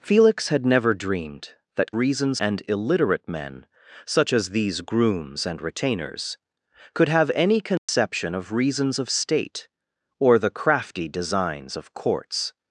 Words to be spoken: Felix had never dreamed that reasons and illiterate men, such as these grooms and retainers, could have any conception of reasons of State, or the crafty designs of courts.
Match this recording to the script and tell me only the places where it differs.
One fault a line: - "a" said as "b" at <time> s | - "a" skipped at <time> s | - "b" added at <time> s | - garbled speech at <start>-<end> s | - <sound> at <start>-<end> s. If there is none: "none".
- dropout at 7.8-7.9 s